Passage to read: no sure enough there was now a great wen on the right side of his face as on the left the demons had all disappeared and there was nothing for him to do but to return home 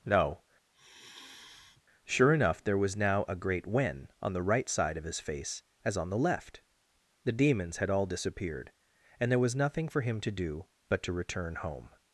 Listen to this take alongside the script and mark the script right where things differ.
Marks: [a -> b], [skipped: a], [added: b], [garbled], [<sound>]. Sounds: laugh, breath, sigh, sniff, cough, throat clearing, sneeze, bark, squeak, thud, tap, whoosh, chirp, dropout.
no [sigh] sure enough there was now a great wen on the right side of his face as on the left the demons had all disappeared and there was nothing for him to do but to return home